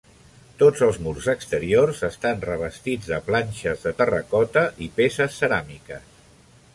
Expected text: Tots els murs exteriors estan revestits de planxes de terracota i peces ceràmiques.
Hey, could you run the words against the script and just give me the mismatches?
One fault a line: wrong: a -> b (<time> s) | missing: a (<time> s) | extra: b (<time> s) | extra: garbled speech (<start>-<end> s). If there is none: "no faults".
no faults